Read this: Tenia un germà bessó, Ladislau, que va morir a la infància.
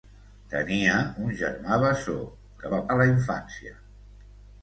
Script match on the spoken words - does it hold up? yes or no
no